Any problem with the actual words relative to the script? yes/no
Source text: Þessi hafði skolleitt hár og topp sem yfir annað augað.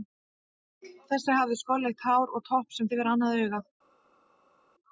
no